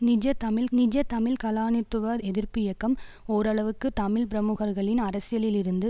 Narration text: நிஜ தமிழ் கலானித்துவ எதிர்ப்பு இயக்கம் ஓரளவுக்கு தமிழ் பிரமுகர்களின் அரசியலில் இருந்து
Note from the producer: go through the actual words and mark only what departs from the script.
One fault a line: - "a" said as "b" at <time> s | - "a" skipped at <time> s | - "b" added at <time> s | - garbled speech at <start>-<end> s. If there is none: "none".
- "நிஜ தமிழ்" added at 0.7 s